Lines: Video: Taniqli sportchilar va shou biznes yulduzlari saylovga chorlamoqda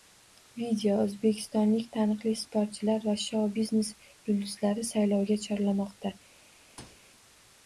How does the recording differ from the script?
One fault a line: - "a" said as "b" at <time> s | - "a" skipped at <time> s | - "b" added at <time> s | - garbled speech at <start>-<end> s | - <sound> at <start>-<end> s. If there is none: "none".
- "O‘zbekistonlik" added at 1.0 s
- thud at 6.8-7.0 s